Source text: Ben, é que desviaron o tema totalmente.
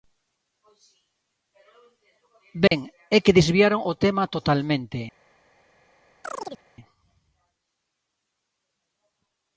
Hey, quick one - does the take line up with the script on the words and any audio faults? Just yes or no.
no